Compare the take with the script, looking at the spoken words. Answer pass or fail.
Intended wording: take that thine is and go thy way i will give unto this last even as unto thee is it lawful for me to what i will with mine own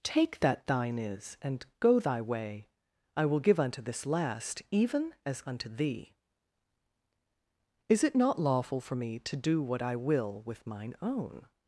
fail